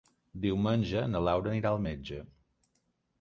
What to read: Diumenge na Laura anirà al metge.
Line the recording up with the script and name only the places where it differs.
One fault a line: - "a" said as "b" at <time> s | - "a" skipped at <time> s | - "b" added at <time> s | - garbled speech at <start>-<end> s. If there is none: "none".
none